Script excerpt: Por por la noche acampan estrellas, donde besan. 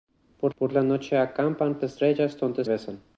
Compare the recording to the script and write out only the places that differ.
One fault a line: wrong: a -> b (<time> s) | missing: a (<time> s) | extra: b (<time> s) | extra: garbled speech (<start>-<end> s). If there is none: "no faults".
no faults